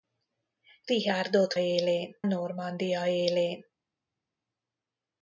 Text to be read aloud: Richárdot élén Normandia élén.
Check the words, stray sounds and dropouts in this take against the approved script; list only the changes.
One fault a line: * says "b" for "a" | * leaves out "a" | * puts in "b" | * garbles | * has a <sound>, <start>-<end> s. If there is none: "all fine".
all fine